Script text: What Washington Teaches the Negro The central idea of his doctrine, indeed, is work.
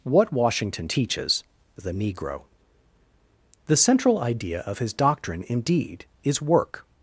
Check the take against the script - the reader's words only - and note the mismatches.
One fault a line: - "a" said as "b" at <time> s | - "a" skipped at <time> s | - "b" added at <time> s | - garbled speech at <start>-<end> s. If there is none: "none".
none